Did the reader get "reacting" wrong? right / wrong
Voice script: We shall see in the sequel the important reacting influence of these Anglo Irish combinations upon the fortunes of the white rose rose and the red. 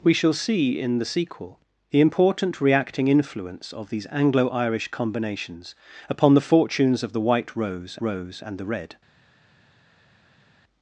right